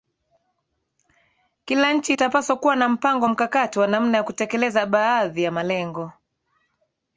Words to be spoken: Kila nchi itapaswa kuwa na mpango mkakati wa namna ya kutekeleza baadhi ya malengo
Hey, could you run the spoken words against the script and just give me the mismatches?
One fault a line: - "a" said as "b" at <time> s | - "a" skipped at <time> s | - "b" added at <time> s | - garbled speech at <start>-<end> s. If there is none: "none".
none